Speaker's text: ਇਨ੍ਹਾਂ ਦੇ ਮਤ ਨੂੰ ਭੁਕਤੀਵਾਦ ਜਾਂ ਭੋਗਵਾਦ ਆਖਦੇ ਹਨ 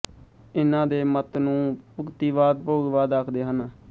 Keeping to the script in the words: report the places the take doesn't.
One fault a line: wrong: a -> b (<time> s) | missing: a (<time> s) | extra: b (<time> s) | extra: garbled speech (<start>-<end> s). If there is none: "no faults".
missing: ਜਾਂ (2.6 s)